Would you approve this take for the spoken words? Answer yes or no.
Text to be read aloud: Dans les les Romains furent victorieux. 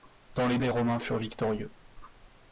yes